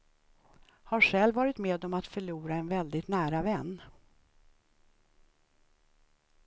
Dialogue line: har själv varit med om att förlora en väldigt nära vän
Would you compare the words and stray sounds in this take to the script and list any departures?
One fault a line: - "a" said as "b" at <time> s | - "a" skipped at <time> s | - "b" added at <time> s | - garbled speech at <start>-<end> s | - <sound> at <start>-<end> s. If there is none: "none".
none